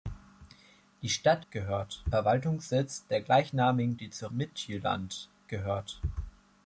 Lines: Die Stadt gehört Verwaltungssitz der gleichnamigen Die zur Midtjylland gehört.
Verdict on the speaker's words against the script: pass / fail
pass